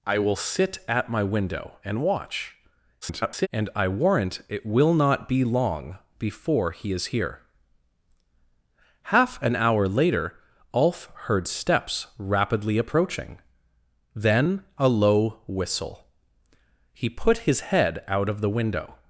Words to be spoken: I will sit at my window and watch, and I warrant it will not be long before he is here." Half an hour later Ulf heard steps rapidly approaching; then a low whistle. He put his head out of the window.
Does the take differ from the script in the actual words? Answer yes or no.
yes